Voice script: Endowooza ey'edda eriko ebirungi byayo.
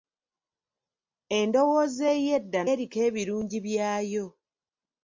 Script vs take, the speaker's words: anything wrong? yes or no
no